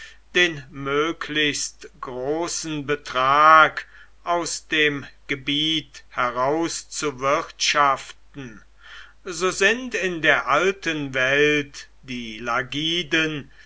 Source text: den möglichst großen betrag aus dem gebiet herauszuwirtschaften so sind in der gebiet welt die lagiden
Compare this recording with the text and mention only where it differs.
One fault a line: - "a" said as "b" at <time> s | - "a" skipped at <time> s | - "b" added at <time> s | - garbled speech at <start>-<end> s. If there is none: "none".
- "gebiet" said as "alten" at 10.5 s